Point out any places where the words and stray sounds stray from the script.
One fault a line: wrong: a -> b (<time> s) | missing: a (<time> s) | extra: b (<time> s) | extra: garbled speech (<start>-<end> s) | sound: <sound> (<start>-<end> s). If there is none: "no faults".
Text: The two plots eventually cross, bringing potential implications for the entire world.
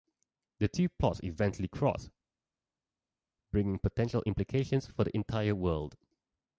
no faults